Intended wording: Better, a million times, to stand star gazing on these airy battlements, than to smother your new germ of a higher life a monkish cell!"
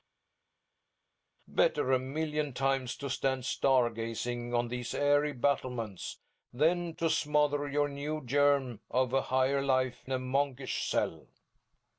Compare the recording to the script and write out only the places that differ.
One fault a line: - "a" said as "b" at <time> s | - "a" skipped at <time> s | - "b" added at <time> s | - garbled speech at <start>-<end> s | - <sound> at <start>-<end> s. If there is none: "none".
none